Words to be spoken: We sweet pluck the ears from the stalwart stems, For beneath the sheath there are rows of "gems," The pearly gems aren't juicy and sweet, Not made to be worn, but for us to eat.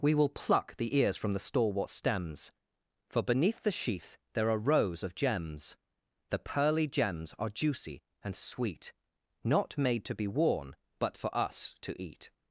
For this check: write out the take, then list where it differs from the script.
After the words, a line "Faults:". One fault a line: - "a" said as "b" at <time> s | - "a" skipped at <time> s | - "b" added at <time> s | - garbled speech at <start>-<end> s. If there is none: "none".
We will pluck the ears from the stalwart stems, For beneath the sheath there are rows of "gems," The pearly gems are juicy and sweet, Not made to be worn, but for us to eat.
Faults:
- "sweet" said as "will" at 0.1 s
- "aren't" said as "are" at 7.4 s